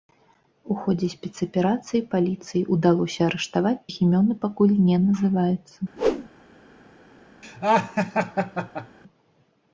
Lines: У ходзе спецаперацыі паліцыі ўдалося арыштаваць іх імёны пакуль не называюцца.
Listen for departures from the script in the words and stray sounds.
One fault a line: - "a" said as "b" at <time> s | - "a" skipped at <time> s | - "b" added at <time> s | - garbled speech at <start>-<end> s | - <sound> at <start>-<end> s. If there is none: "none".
- whoosh at 6.0-6.3 s
- laugh at 7.4-9.0 s